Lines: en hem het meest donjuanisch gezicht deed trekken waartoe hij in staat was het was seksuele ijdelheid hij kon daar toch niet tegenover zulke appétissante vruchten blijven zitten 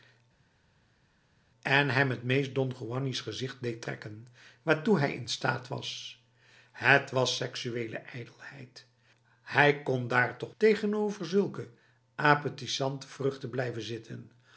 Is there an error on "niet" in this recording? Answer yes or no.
yes